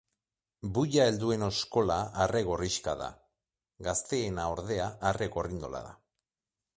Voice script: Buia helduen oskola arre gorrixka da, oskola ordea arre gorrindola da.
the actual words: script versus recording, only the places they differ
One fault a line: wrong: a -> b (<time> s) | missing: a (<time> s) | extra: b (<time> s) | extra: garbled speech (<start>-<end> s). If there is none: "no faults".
wrong: oskola -> gazteena (3.9 s)